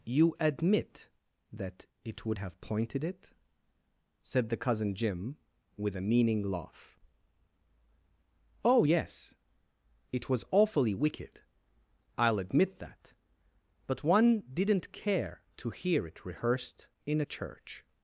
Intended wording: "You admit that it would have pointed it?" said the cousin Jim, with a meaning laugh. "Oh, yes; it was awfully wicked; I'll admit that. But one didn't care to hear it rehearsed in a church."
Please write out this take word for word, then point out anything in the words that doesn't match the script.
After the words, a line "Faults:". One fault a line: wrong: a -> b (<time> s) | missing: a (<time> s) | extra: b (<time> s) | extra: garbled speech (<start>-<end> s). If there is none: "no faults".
"You admit that it would have pointed it?" said the cousin Jim, with a meaning laugh. "Oh, yes; it was awfully wicked; I'll admit that. But one didn't care to hear it rehearsed in a church."
Faults:
no faults